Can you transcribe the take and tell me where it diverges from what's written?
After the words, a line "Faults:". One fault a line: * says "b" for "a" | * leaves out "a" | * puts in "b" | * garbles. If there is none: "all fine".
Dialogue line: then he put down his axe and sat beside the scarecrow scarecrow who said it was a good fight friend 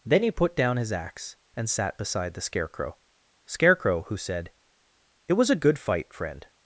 then he put down his axe and sat beside the scarecrow scarecrow who said it was a good fight friend
Faults:
all fine